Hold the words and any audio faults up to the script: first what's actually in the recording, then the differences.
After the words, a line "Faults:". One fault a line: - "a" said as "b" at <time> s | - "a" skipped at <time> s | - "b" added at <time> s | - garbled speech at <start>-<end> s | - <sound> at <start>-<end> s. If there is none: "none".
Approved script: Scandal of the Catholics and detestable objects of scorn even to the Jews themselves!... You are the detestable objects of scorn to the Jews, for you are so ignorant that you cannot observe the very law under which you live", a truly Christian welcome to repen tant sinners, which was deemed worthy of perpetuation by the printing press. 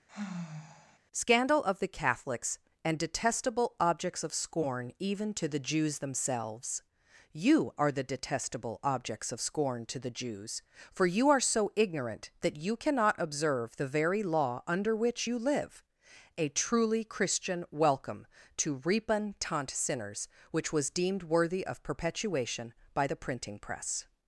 Scandal of the Catholics and detestable objects of scorn even to the Jews themselves!... You are the detestable objects of scorn to the Jews, for you are so ignorant that you cannot observe the very law under which you live", a truly Christian welcome to repen tant sinners, which was deemed worthy of perpetuation by the printing press.
Faults:
- sigh at 0.1-1.0 s